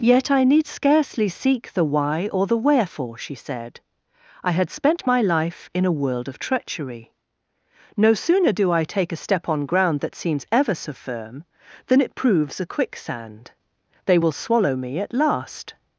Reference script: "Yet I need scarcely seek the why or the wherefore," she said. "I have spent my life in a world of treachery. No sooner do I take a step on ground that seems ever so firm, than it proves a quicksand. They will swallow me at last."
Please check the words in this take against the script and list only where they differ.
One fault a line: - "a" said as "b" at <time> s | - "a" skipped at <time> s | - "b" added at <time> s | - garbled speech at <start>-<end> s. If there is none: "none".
- "have" said as "had" at 4.5 s